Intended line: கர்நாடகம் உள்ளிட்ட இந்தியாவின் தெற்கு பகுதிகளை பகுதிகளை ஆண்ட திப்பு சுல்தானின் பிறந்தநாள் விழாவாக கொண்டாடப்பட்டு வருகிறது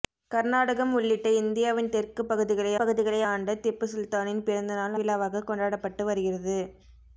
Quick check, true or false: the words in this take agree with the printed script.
true